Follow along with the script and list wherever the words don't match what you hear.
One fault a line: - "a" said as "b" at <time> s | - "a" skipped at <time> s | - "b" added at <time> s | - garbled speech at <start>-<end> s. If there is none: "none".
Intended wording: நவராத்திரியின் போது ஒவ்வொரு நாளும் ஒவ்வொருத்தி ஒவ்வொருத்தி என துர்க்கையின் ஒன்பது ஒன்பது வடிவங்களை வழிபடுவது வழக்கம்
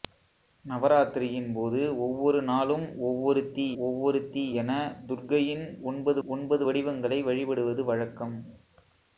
none